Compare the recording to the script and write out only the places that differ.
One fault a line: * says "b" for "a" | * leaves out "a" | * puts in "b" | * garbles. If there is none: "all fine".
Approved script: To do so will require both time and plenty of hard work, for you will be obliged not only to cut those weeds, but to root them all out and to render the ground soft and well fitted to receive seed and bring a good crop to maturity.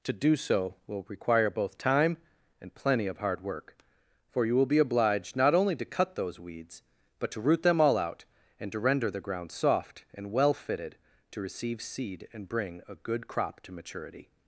all fine